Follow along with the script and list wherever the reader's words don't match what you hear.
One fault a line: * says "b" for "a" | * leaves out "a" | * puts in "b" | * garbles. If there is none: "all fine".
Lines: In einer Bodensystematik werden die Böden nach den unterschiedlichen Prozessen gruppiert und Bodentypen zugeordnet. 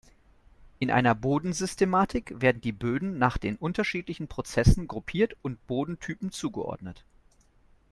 all fine